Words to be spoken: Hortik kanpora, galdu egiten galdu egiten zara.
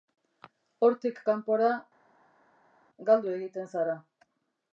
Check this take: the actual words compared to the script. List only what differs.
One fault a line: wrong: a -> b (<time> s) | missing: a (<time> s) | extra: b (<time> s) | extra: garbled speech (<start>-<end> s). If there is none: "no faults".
missing: galdu egiten (3.7 s)